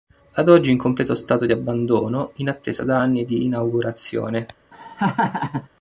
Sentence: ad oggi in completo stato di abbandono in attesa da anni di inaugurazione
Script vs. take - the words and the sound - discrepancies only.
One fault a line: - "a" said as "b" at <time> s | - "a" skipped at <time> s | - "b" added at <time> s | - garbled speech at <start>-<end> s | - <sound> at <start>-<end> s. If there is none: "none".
- laugh at 4.7-5.7 s